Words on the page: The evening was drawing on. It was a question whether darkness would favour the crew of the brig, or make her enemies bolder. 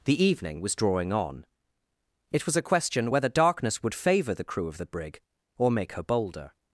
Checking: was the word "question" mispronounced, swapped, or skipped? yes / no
no